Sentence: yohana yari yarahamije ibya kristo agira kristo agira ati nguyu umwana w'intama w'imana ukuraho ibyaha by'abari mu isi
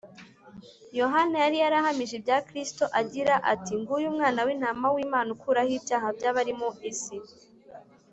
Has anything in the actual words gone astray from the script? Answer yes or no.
yes